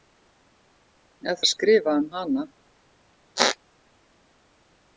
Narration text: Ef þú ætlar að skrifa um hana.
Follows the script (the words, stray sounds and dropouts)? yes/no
no